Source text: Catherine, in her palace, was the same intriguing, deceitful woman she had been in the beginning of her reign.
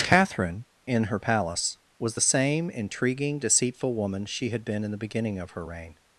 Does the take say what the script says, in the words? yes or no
yes